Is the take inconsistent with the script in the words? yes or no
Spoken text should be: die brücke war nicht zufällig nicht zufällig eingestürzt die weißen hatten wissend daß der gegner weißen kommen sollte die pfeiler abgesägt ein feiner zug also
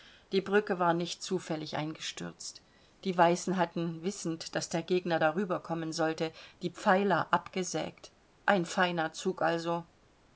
yes